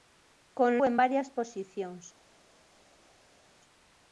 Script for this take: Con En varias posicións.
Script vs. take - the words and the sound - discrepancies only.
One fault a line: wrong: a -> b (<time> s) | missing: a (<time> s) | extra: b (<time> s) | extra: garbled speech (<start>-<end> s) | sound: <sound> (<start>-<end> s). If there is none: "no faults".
no faults